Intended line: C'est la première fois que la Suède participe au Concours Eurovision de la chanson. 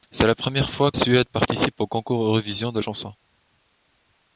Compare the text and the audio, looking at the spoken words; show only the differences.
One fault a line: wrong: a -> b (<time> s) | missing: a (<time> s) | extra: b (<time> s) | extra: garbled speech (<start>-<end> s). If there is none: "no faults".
missing: que la (0.9 s)
missing: la (2.8 s)